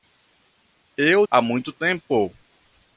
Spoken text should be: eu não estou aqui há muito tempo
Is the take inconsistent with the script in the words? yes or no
yes